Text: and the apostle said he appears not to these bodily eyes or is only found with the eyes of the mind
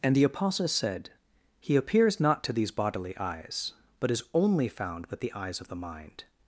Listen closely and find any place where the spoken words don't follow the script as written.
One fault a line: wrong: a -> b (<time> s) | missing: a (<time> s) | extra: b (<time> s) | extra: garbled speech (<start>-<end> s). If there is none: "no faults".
wrong: or -> but (4.0 s)